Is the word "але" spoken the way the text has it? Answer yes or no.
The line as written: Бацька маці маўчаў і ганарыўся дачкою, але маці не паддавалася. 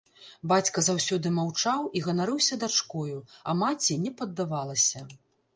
no